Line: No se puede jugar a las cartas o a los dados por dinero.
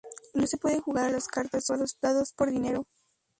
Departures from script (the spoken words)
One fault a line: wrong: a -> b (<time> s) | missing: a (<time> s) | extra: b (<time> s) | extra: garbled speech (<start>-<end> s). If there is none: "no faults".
no faults